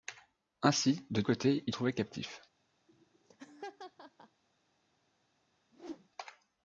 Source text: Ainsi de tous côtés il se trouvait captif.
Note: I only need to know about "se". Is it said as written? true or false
false